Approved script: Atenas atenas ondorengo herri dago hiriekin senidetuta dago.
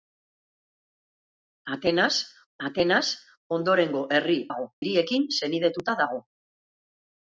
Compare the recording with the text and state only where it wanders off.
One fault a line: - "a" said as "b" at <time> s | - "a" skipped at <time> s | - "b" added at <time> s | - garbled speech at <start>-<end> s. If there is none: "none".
none